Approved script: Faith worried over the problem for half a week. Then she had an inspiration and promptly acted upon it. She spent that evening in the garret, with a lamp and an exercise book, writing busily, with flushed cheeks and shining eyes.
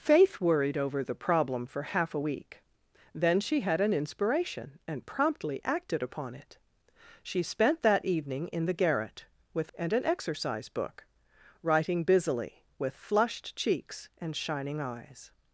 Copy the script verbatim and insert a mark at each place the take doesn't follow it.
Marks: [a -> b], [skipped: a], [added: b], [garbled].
Faith worried over the problem for half a week. Then she had an inspiration and promptly acted upon it. She spent that evening in the garret, with [skipped: a lamp] and an exercise book, writing busily, with flushed cheeks and shining eyes.